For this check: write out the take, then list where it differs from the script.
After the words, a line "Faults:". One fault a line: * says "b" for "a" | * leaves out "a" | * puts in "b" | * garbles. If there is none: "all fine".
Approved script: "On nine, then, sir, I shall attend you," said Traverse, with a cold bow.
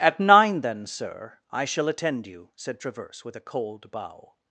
"At nine, then, sir, I shall attend you," said Traverse, with a cold bow.
Faults:
* says "At" for "On"